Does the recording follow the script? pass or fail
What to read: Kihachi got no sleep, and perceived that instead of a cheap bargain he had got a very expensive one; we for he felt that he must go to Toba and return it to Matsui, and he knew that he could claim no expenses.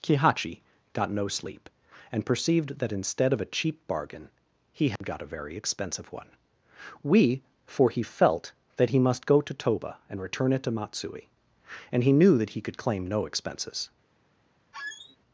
pass